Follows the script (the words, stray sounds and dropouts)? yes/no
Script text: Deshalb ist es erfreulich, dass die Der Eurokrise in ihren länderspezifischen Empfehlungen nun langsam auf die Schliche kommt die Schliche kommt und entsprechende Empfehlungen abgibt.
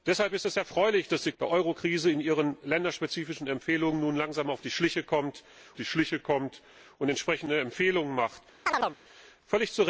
no